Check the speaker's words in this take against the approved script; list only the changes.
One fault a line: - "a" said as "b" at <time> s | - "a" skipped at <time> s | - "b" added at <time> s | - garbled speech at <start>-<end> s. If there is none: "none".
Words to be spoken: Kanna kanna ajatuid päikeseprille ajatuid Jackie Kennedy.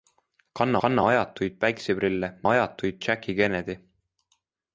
none